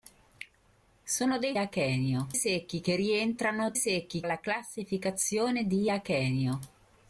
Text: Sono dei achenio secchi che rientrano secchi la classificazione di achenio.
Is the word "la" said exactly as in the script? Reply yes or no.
yes